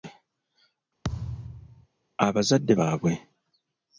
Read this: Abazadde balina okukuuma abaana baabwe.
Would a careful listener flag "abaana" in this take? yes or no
yes